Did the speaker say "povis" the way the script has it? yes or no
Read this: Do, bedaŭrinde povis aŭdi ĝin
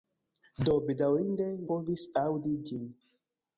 yes